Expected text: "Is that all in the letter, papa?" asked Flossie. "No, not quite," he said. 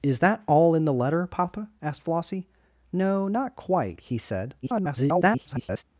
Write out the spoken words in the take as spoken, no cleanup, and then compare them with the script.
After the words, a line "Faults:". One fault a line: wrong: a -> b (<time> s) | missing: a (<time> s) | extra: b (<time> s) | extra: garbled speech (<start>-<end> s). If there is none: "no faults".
"Is that all in the letter, papa?" asked Flossie. "No, not quite," he said. [garbled]
Faults:
extra: garbled speech (4.6-5.8 s)